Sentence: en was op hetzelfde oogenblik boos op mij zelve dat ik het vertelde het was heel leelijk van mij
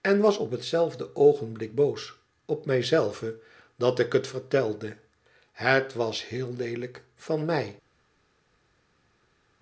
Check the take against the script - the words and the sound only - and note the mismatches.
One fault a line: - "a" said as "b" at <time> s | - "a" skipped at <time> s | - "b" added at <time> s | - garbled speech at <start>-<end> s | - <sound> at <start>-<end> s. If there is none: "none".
none